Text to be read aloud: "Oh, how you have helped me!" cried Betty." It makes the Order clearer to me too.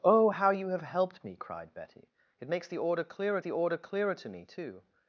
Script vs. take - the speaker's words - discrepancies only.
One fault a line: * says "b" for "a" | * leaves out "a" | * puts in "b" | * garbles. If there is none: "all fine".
* puts in "the Order clearer"